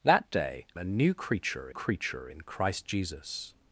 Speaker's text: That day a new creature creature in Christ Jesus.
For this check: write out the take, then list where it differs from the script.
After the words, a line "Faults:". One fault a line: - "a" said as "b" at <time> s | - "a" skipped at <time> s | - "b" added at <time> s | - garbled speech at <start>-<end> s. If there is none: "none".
That day a new creature creature in Christ Jesus.
Faults:
none